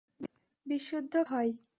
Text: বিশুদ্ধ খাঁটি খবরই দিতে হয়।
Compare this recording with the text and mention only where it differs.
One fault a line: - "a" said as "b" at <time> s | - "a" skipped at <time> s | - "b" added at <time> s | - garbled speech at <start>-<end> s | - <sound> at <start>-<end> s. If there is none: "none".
- "খাঁটি খবরই দিতে" skipped at 1.1 s